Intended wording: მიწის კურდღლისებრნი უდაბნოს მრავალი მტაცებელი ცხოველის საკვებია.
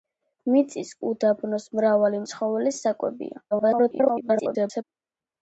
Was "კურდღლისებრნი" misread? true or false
true